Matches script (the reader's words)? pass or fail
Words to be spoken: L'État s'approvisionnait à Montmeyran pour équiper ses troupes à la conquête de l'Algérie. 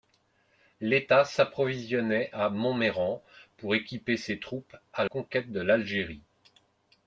fail